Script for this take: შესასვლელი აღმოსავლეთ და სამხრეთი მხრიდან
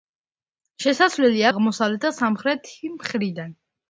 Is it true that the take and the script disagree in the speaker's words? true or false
false